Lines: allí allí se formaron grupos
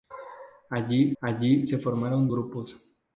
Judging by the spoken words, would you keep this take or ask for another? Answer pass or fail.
pass